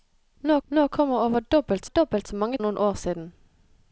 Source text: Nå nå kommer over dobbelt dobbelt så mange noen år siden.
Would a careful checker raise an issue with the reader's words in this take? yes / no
no